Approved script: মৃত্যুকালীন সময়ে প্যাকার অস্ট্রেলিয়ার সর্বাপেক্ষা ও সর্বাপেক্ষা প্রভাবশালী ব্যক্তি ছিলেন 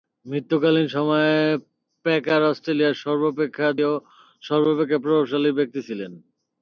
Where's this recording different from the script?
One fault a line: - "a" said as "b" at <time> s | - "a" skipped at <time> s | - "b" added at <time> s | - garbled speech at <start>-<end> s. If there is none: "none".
none